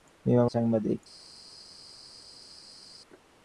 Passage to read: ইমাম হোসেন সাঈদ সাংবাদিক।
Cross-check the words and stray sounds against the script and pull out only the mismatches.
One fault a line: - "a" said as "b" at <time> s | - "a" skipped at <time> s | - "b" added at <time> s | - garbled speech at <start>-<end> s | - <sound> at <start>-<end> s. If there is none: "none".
- "হোসেন সাঈদ" skipped at 0.5 s